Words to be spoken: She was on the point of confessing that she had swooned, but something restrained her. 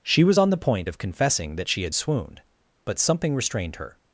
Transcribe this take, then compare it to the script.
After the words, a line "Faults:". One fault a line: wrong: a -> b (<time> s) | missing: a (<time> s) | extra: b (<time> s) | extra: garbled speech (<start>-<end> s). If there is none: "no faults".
She was on the point of confessing that she had swooned, but something restrained her.
Faults:
no faults